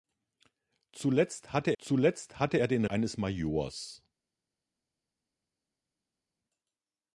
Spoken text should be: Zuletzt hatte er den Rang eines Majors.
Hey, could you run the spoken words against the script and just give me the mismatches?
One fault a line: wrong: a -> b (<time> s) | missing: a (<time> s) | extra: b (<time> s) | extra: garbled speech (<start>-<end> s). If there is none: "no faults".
extra: zuletzt hatte (1.8 s)
missing: Rang (2.8 s)